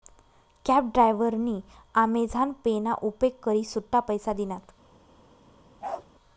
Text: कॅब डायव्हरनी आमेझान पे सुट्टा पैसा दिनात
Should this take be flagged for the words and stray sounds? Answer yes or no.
yes